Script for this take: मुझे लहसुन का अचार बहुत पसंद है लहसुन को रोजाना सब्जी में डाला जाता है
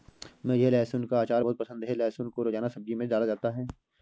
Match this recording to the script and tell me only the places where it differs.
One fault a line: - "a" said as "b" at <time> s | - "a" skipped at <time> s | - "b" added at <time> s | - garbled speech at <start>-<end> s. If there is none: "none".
none